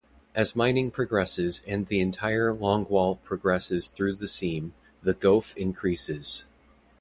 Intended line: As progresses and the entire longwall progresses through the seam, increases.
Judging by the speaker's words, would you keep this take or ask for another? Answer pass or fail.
fail